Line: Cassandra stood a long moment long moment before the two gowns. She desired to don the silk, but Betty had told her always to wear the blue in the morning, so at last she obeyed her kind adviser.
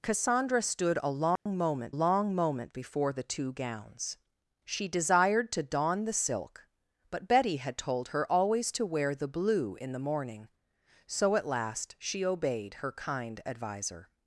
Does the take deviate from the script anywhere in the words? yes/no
no